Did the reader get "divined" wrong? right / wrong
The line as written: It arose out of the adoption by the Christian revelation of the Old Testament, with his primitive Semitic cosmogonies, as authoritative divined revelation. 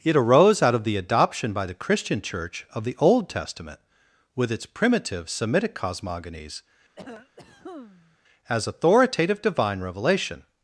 wrong